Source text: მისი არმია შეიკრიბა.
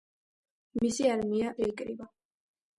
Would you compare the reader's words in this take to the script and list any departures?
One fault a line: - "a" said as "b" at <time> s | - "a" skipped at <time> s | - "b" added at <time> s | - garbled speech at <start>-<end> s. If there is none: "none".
none